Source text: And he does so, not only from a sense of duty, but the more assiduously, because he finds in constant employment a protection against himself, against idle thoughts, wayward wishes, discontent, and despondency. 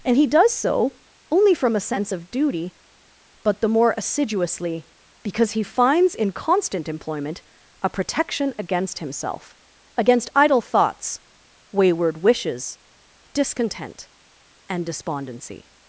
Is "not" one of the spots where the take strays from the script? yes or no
yes